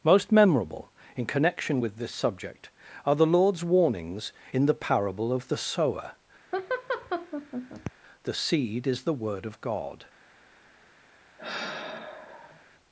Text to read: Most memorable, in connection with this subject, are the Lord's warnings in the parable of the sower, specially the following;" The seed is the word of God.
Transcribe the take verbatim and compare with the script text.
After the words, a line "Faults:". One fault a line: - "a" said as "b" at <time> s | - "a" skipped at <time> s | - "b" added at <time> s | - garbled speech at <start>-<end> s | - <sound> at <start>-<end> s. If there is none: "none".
Most memorable, in connection with this subject, are the Lord's warnings in the parable of the sower,;" The seed is the word of God.
Faults:
- "specially the following" skipped at 6.2 s
- laugh at 6.5-7.9 s
- sigh at 11.4-12.7 s